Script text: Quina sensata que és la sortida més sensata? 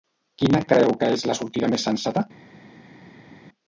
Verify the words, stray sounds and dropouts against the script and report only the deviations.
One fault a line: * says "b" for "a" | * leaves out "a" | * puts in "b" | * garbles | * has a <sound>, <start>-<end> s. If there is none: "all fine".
* says "creu" for "sensata"